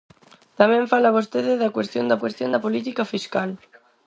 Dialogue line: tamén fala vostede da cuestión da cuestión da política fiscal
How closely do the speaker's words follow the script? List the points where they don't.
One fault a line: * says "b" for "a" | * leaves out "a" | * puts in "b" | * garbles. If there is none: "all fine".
all fine